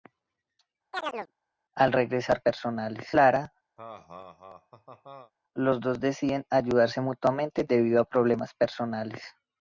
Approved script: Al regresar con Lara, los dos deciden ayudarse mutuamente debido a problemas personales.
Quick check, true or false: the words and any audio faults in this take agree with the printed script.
false